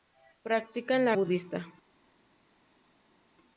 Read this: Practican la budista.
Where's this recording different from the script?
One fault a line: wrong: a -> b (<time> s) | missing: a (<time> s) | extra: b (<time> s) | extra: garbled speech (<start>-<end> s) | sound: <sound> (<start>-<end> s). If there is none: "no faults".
no faults